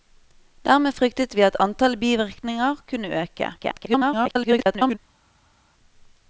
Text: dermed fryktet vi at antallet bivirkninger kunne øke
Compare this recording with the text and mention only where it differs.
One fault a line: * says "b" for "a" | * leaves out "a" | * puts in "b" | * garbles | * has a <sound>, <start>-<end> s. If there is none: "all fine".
* garbles